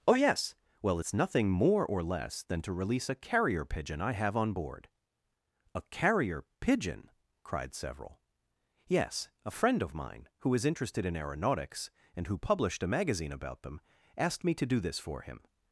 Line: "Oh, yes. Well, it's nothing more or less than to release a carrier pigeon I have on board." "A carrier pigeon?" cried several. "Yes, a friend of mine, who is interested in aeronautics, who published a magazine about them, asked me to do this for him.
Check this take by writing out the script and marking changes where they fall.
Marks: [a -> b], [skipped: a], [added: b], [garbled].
"Oh, yes. Well, it's nothing more or less than to release a carrier pigeon I have on board." "A carrier pigeon?" cried several. "Yes, a friend of mine, who is interested in aeronautics, [added: and] who published a magazine about them, asked me to do this for him.